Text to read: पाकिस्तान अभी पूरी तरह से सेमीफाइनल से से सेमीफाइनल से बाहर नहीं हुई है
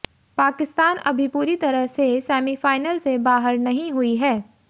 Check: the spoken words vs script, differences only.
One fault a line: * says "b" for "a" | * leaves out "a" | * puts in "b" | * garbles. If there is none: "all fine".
* leaves out "से सेमीफाइनल से"